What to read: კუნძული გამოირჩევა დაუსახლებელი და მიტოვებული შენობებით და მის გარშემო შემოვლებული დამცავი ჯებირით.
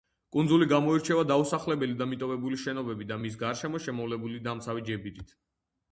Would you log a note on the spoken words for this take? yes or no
no